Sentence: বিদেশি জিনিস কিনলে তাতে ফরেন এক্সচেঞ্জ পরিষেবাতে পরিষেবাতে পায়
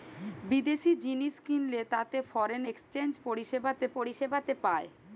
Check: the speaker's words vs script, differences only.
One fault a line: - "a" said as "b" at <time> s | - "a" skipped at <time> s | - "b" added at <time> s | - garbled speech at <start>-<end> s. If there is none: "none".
none